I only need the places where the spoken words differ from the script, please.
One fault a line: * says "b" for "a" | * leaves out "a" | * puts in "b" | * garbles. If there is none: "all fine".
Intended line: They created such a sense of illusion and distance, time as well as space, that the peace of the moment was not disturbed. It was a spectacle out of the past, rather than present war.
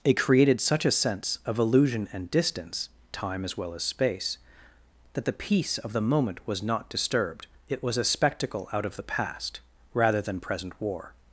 * says "It" for "They"